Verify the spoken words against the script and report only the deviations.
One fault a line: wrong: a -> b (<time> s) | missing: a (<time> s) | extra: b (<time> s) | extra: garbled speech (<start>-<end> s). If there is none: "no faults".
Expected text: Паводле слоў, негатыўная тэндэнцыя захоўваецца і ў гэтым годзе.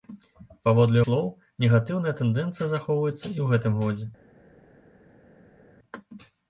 no faults